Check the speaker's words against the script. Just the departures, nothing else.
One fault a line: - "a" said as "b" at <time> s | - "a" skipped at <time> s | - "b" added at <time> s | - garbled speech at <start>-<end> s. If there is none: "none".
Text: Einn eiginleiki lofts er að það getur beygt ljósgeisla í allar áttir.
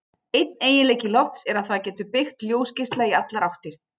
none